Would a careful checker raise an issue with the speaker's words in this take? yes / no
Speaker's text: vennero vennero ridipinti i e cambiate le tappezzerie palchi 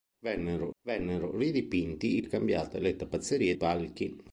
no